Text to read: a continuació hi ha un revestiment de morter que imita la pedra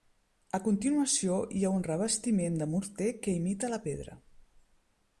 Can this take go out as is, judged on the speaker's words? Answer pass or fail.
pass